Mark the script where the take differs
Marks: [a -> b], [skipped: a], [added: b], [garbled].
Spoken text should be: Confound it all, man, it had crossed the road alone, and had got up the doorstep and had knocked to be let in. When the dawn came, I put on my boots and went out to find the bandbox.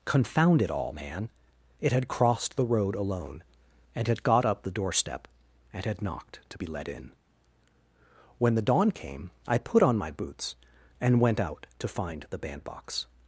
Confound it all, man, it had crossed the road alone, and had got up the doorstep and had knocked to be let in. When the dawn came, I put on my boots and went out to find the bandbox.